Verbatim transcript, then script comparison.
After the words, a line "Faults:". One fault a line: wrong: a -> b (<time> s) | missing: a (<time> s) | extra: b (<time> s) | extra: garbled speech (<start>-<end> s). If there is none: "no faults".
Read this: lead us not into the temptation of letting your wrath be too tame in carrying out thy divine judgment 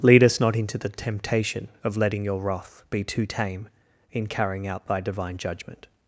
lead us not into the temptation of letting your wrath be too tame in carrying out thy divine judgment
Faults:
no faults